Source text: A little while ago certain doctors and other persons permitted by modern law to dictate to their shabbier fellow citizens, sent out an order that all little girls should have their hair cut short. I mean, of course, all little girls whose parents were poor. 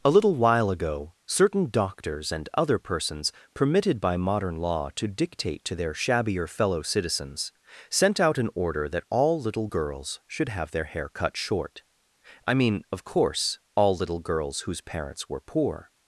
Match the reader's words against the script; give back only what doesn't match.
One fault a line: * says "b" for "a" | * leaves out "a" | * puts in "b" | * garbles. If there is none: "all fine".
all fine